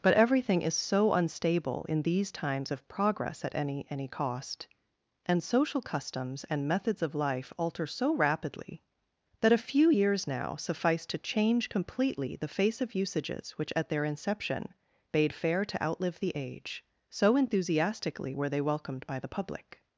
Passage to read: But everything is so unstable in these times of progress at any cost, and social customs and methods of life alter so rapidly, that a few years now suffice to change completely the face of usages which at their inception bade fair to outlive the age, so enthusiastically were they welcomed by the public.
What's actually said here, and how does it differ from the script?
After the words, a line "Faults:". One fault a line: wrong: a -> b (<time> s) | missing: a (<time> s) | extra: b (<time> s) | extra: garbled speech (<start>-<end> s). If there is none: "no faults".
But everything is so unstable in these times of progress at any any cost, and social customs and methods of life alter so rapidly, that a few years now suffice to change completely the face of usages which at their inception bade fair to outlive the age, so enthusiastically were they welcomed by the public.
Faults:
extra: any (3.9 s)